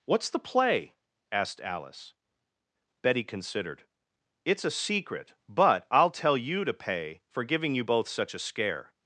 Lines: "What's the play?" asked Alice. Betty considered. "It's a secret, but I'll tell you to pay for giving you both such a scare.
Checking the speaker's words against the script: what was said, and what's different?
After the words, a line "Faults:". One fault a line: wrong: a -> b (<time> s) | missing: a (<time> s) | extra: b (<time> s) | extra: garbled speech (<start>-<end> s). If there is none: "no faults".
"What's the play?" asked Alice. Betty considered. "It's a secret, but I'll tell you to pay for giving you both such a scare.
Faults:
no faults